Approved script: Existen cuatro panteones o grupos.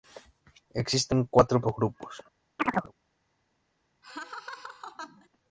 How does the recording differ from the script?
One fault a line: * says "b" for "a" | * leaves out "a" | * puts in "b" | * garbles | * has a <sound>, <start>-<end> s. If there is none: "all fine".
* leaves out "panteones"
* has a chirp, 2.6-2.9 s
* has a laugh, 4.0-5.3 s